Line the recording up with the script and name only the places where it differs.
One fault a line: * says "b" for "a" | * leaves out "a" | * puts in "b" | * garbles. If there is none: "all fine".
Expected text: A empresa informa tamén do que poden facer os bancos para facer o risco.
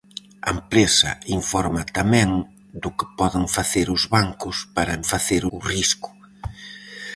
all fine